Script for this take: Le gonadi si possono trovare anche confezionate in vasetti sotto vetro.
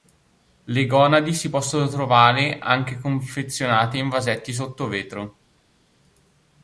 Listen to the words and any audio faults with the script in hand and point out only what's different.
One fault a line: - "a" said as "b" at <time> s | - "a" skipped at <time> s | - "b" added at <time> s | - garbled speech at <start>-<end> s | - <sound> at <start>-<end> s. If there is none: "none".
none